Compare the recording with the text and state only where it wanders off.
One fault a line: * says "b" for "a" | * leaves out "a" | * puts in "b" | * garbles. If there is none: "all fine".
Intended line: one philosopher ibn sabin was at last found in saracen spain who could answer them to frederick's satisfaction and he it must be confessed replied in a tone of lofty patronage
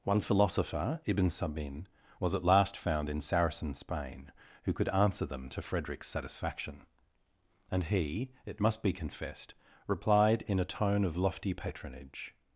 all fine